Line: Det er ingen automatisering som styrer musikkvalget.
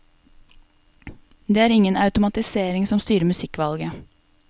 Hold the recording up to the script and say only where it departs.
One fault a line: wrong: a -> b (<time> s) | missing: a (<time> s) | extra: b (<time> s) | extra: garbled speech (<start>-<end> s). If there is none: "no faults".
no faults